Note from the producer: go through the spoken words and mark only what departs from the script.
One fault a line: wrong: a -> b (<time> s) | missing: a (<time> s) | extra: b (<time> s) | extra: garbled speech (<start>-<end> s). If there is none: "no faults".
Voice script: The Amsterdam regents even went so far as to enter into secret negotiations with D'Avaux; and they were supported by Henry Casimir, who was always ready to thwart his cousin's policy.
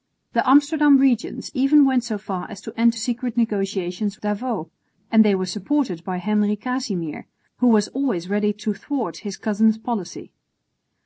missing: into (3.0 s)
missing: with (4.2 s)